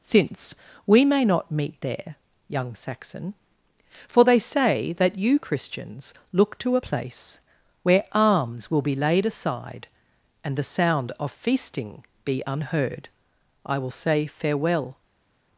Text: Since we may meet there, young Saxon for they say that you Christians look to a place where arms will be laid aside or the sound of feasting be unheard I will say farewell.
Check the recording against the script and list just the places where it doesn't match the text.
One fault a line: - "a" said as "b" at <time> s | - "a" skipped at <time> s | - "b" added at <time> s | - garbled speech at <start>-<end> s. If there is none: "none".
- "not" added at 1.2 s
- "or" said as "and" at 10.4 s